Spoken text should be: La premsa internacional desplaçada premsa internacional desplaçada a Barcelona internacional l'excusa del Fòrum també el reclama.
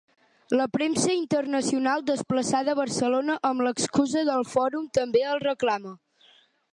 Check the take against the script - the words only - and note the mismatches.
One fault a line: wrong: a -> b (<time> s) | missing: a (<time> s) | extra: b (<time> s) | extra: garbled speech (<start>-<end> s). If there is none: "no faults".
missing: premsa internacional desplaçada (2.7 s)
wrong: internacional -> amb (3.5 s)